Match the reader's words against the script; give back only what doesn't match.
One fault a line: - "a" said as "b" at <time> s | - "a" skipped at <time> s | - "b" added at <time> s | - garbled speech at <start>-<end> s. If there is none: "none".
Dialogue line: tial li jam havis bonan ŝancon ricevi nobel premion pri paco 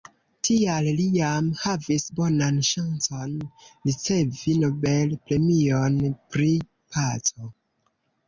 none